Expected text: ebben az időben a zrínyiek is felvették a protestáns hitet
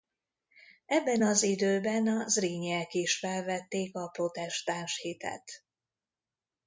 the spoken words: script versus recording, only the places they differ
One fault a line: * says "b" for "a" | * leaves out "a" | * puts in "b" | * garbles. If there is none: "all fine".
all fine